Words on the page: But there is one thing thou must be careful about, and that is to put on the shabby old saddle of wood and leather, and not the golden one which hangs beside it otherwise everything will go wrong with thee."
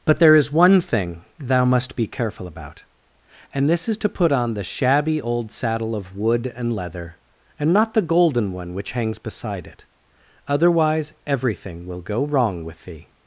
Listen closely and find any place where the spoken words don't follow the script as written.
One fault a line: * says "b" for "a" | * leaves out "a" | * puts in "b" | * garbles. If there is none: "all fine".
* says "this" for "that"